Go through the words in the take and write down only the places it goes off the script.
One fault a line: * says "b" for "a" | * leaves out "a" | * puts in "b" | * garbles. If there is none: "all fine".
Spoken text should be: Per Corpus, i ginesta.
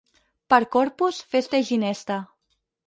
* puts in "festa"